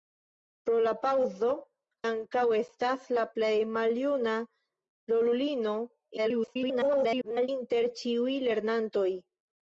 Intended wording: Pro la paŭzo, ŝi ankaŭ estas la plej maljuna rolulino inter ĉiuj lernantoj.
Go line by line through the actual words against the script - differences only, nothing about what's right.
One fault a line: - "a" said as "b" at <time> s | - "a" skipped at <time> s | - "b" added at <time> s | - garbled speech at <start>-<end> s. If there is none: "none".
- "ŝi" skipped at 1.5 s
- garbled speech at 6.2-7.5 s